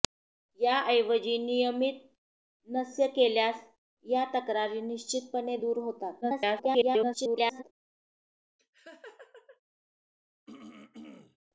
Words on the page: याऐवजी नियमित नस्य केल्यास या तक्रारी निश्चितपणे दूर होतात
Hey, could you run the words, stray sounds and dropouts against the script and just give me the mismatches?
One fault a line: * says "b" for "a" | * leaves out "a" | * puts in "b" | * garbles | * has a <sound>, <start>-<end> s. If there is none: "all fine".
* garbles
* has a laugh, 8.6-9.6 s
* has a throat clearing, 10.5-11.4 s